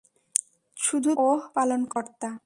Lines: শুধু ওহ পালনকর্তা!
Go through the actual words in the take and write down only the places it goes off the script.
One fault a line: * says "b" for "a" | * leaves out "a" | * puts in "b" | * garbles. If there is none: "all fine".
all fine